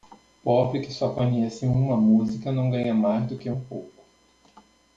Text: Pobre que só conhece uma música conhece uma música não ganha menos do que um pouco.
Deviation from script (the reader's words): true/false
true